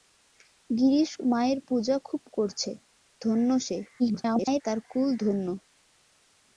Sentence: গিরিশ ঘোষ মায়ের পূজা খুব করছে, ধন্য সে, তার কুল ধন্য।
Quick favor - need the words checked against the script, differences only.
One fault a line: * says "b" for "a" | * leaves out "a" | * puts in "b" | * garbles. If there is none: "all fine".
* leaves out "ঘোষ"
* garbles